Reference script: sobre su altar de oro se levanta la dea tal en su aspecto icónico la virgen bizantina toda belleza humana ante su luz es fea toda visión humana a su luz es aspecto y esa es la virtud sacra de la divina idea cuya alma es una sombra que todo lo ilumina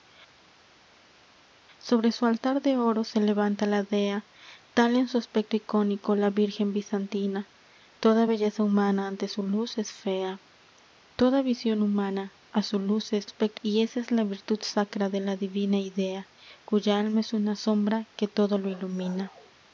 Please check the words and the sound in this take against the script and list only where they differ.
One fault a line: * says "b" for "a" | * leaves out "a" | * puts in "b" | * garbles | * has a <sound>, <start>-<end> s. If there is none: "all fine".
all fine